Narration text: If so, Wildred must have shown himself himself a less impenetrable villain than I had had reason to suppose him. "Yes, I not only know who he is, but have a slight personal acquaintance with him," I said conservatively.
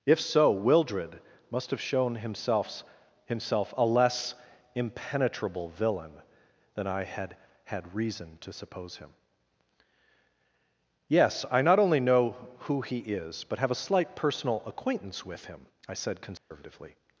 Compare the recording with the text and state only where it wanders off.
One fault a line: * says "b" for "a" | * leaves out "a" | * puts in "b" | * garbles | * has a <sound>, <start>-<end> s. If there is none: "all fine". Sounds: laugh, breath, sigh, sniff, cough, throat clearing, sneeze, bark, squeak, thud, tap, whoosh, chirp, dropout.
* has a dropout, 16.4-16.5 s